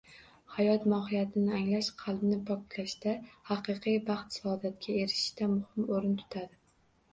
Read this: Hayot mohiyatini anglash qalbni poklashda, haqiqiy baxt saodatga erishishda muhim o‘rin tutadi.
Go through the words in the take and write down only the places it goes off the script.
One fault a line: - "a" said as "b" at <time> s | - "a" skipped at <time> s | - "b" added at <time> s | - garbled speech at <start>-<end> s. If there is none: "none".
none